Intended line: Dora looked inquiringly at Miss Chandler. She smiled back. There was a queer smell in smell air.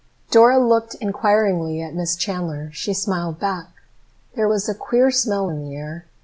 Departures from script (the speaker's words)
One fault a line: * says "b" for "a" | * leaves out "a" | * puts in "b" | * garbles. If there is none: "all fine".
* says "the" for "smell"